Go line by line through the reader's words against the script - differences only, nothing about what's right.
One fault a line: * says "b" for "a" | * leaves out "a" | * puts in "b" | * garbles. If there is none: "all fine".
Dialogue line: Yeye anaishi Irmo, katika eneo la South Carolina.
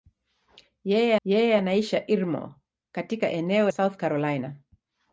* puts in "yeye"
* leaves out "la"